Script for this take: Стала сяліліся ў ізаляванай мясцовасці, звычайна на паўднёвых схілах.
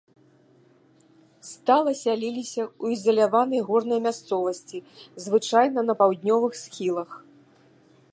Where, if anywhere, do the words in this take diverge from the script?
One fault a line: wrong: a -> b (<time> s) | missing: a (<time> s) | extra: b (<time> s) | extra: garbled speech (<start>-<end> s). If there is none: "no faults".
extra: горнай (3.7 s)